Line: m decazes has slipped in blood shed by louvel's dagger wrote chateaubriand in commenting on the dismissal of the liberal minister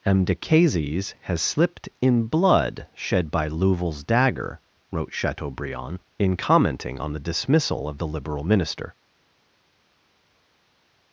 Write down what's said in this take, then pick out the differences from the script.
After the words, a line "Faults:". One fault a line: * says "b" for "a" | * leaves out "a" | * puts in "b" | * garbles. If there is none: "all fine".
m decazes has slipped in blood shed by louvel's dagger wrote chateaubriand in commenting on the dismissal of the liberal minister
Faults:
all fine